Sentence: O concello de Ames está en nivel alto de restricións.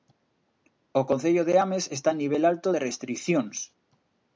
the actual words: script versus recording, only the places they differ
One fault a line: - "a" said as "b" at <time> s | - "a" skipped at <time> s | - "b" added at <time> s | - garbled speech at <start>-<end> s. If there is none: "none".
none